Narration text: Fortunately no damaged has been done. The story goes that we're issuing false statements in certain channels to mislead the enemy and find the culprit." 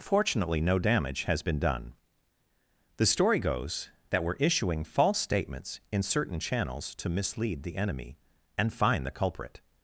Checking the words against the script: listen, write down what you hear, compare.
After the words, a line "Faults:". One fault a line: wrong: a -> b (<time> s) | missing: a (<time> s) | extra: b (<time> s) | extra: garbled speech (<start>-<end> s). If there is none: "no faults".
Fortunately no damage has been done. The story goes that we're issuing false statements in certain channels to mislead the enemy and find the culprit."
Faults:
wrong: damaged -> damage (0.8 s)